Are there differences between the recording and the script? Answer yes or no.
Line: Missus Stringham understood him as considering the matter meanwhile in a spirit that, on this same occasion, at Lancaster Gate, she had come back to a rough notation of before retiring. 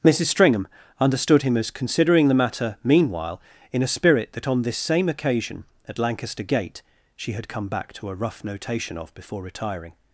no